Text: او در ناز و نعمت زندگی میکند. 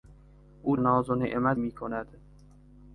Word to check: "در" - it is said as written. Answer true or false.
false